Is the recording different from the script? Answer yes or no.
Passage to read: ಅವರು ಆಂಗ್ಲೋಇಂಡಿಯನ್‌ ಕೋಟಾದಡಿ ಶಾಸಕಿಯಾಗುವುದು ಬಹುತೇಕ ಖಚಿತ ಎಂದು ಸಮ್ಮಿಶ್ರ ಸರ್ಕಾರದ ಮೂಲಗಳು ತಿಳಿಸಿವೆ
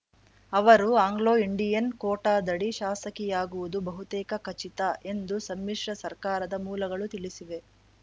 no